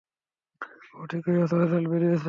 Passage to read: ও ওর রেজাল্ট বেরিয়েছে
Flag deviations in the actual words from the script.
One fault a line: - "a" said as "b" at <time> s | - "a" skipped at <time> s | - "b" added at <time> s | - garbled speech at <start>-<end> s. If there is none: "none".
- "ঠিকই আছে" added at 1.1 s